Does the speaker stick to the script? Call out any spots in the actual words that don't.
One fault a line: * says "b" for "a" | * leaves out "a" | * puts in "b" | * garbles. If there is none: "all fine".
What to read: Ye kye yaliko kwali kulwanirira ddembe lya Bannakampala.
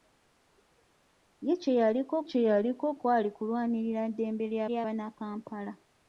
* puts in "kye yaliko"
* puts in "lya"